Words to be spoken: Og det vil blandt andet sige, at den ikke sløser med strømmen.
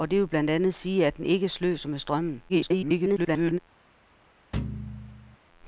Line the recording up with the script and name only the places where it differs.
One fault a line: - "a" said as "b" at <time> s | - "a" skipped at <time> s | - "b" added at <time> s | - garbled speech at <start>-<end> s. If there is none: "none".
- garbled speech at 2.5-3.6 s